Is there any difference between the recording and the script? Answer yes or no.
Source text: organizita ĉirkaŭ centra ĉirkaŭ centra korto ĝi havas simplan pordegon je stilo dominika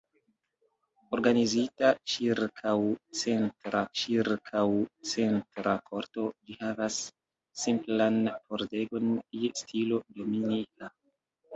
no